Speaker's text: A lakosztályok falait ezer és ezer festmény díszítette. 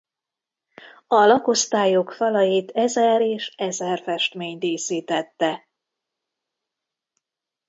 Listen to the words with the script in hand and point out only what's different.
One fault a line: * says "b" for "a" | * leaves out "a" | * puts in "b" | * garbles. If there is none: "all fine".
all fine